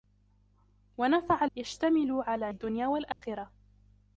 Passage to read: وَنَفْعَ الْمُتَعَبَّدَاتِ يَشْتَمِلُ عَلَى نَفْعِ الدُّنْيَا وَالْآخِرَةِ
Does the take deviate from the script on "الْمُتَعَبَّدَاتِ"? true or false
true